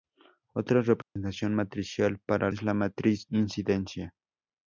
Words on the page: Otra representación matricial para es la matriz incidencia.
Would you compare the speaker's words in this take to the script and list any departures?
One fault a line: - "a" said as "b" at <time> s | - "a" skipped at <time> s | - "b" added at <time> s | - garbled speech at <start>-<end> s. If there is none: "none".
none